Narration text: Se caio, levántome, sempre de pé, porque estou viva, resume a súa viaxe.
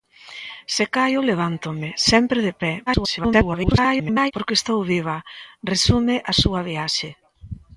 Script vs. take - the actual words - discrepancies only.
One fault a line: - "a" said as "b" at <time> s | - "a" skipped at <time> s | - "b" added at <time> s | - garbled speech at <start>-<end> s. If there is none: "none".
- garbled speech at 2.9-4.3 s